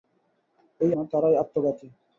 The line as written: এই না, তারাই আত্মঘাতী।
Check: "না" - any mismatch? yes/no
no